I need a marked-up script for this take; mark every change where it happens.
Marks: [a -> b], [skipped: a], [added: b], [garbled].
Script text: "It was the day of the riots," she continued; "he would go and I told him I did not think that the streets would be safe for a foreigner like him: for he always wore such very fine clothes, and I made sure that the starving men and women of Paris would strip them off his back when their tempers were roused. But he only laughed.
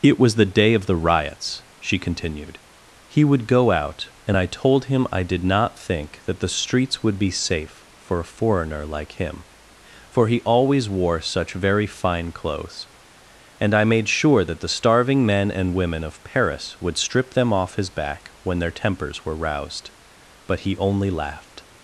"It was the day of the riots," she continued; "he would go [added: out] and I told him I did not think that the streets would be safe for a foreigner like him: for he always wore such very fine clothes, and I made sure that the starving men and women of Paris would strip them off his back when their tempers were roused. But he only laughed.